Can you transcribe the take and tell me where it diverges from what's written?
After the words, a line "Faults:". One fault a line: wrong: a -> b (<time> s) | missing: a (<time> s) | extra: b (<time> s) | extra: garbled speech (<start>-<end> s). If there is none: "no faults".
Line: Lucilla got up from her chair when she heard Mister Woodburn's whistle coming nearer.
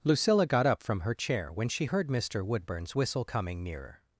Lucilla got up from her chair when she heard Mister Woodburn's whistle coming nearer.
Faults:
no faults